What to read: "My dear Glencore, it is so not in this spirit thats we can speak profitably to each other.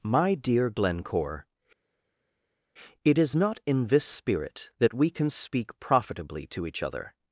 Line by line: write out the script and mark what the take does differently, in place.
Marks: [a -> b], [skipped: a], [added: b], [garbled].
"My dear Glencore, it is [skipped: so] not in this spirit [thats -> that] we can speak profitably to each other.